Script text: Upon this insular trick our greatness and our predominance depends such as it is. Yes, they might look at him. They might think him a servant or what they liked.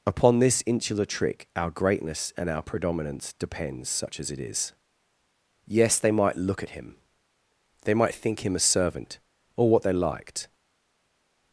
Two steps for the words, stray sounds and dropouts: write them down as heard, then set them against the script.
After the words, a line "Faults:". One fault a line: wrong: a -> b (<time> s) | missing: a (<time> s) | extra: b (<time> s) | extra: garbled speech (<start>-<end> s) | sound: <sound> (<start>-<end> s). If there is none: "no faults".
Upon this insular trick our greatness and our predominance depends such as it is. Yes, they might look at him. They might think him a servant or what they liked.
Faults:
no faults